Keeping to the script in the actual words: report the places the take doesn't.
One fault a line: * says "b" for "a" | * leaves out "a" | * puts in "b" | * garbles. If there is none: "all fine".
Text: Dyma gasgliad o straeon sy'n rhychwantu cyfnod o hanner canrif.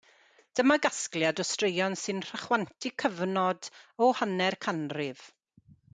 all fine